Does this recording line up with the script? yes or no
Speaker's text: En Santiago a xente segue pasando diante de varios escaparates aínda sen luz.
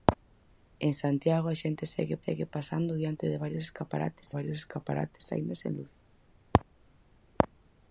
no